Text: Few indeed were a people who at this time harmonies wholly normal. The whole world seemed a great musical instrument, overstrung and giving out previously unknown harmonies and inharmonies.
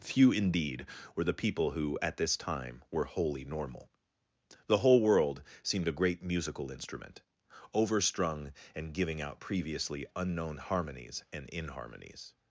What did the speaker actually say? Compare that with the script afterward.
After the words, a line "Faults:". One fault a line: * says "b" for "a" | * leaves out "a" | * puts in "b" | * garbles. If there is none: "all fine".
Few indeed were the people who at this time were wholly normal. The whole world seemed a great musical instrument, overstrung and giving out previously unknown harmonies and inharmonies.
Faults:
* says "the" for "a"
* says "were" for "harmonies"